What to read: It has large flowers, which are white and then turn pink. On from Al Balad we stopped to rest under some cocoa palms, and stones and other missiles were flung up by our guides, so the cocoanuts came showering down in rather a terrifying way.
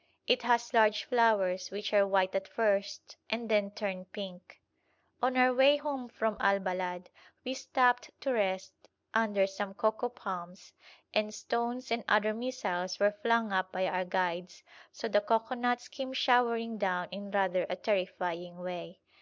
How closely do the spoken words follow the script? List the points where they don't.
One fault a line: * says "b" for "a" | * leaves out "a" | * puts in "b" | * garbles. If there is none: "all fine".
* puts in "at first"
* puts in "our way home"